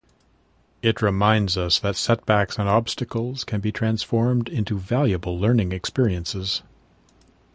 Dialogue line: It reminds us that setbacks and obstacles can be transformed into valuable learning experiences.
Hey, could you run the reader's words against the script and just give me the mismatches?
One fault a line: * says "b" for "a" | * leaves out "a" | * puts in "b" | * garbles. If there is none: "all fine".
all fine